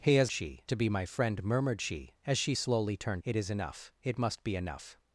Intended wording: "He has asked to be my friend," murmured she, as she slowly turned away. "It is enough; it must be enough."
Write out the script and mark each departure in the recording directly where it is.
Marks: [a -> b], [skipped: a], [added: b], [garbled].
"He has [asked -> she] to be my friend," murmured she, as she slowly turned [skipped: away.] "It is enough; it must be enough."